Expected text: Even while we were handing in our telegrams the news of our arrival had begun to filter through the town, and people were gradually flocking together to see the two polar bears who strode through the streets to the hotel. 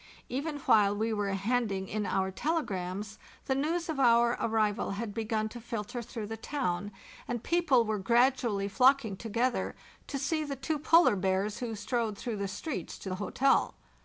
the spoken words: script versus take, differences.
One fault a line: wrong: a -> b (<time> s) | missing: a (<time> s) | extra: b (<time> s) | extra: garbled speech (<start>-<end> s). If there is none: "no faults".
no faults